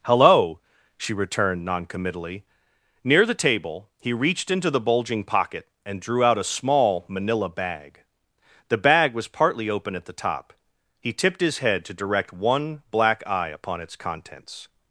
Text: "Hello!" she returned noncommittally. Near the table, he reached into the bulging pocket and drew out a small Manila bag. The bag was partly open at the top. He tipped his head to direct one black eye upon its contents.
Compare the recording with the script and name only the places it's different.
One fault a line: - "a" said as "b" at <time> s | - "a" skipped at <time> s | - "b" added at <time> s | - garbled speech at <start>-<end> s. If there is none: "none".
none